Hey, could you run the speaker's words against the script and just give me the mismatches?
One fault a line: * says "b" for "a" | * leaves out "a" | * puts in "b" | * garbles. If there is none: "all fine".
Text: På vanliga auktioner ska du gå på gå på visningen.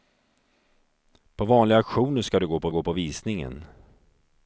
all fine